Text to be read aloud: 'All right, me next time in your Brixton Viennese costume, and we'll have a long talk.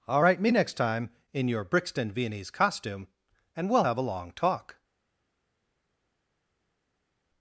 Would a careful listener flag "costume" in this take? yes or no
no